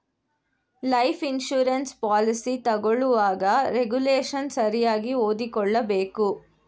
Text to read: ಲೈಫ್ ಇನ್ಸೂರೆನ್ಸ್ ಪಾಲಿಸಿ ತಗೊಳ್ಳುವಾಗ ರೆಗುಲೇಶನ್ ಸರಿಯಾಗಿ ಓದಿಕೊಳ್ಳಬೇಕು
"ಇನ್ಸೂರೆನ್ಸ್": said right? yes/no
yes